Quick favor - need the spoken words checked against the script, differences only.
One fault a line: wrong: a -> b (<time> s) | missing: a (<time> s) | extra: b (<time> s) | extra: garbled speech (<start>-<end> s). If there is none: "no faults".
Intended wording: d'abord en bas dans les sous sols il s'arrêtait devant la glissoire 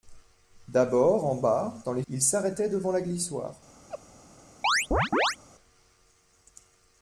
missing: sous sols (2.0 s)